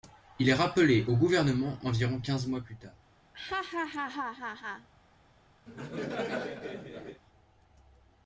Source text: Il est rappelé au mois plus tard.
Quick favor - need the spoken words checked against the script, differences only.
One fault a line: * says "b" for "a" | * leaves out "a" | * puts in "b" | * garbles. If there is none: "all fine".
* puts in "gouvernement environ quinze"